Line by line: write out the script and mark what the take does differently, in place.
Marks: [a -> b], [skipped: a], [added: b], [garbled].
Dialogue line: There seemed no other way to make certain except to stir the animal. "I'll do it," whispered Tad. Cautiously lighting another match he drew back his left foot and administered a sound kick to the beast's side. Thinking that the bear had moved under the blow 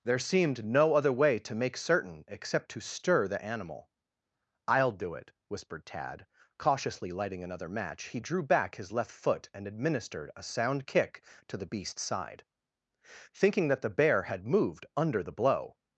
There seemed no other way to make certain except to stir the animal. "I'll do it," whispered Tad. Cautiously lighting another match he drew back his left foot and administered a sound kick to the beast's side. Thinking that the bear had moved under the blow